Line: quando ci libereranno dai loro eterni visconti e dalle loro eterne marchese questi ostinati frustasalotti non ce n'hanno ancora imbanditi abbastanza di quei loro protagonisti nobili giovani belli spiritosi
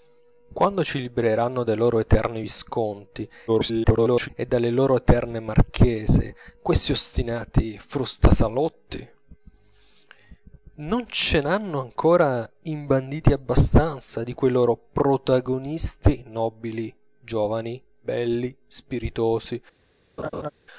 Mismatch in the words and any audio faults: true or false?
true